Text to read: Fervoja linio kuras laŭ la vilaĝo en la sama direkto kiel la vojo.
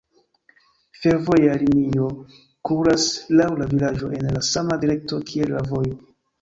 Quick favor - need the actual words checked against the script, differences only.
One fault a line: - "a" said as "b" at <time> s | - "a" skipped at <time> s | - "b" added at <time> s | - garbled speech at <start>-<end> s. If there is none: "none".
none